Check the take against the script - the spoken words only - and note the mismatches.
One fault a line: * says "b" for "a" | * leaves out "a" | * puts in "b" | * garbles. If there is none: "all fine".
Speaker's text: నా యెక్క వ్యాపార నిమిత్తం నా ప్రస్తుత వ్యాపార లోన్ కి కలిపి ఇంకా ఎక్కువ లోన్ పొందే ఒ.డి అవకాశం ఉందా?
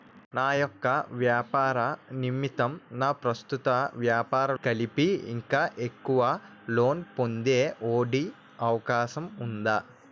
* leaves out "లోన్ కి"